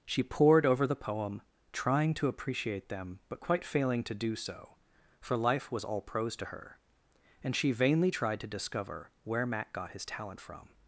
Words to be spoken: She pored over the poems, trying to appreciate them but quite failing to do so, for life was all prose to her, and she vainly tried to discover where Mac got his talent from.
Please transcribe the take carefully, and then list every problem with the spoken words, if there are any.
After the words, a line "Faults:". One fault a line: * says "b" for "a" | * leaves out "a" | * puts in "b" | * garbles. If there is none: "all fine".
She pored over the poem, trying to appreciate them but quite failing to do so, for life was all prose to her, and she vainly tried to discover where Mac got his talent from.
Faults:
* says "poem" for "poems"